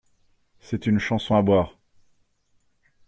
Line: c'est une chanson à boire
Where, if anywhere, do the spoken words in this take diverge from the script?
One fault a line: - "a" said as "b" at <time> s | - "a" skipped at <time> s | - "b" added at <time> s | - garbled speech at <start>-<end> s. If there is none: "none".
none